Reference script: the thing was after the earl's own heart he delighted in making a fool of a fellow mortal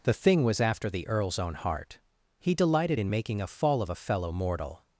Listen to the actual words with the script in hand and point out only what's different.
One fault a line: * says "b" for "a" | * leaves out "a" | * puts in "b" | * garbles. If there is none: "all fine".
* says "fall" for "fool"